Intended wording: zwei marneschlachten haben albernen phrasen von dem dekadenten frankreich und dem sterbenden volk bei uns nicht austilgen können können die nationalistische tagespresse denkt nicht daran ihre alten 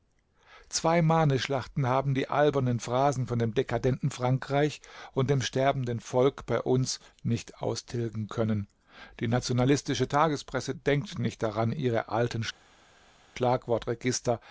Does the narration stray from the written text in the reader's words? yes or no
yes